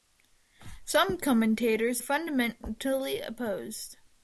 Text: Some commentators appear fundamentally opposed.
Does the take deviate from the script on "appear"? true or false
true